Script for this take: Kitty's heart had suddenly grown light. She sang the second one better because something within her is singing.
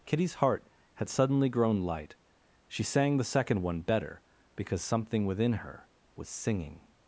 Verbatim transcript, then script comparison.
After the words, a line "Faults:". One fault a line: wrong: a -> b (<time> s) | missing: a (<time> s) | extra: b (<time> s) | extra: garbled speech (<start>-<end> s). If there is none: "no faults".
Kitty's heart had suddenly grown light. She sang the second one better because something within her was singing.
Faults:
wrong: is -> was (6.1 s)